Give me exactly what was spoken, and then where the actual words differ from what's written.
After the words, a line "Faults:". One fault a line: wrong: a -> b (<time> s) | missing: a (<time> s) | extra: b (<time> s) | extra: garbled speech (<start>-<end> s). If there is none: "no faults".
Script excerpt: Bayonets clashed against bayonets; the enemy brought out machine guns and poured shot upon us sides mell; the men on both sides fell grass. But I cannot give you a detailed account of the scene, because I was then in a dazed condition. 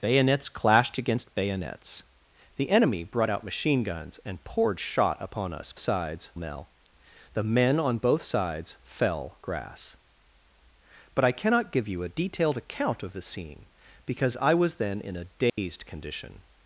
Bayonets clashed against bayonets; the enemy brought out machine guns and poured shot upon us sides mell; the men on both sides fell grass. But I cannot give you a detailed account of the scene, because I was then in a dazed condition.
Faults:
no faults